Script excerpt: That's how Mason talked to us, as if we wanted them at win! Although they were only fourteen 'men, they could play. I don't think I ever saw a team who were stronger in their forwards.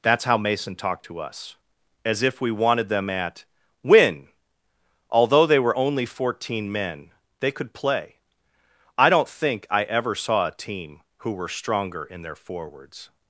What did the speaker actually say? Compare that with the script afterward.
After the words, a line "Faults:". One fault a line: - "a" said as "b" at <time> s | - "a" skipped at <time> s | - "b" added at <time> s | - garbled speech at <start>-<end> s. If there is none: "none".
That's how Mason talked to us, as if we wanted them at win! Although they were only fourteen 'men, they could play. I don't think I ever saw a team who were stronger in their forwards.
Faults:
none